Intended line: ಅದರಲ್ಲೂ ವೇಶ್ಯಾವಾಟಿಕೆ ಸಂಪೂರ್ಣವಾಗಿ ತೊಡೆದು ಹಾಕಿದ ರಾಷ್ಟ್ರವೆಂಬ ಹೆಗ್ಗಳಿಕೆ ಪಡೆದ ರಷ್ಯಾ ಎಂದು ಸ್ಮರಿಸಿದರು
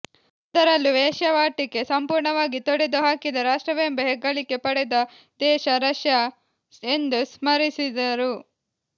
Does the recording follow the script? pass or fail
fail